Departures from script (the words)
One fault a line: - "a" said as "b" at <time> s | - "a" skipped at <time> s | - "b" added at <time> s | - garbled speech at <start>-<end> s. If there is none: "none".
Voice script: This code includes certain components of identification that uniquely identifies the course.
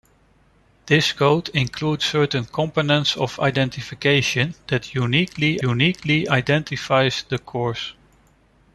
- "uniquely" added at 5.6 s